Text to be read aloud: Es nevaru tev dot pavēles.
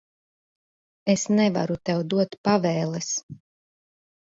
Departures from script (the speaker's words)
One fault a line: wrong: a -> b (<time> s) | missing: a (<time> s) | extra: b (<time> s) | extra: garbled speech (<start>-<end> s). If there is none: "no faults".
no faults